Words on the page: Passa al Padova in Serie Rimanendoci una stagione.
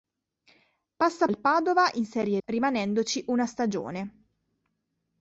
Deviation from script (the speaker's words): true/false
false